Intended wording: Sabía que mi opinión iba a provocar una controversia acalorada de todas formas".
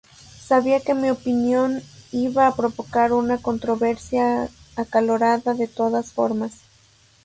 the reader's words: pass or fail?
pass